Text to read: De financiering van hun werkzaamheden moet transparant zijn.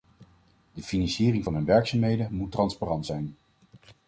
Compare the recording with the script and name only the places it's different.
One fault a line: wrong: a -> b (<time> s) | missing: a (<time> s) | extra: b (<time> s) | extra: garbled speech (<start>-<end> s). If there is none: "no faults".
no faults